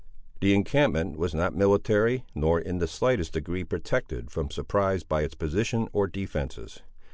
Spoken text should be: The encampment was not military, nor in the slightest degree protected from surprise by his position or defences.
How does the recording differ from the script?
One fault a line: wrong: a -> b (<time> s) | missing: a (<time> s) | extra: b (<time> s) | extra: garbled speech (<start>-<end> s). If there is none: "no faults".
wrong: his -> its (5.2 s)